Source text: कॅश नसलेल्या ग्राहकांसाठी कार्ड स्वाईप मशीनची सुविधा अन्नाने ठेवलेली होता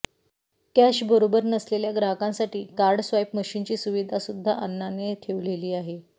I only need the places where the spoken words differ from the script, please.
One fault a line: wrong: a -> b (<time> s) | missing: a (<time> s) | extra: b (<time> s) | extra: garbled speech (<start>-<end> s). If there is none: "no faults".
extra: बरोबर (1.1 s)
extra: सुद्धा (4.2 s)
wrong: होता -> आहे (5.7 s)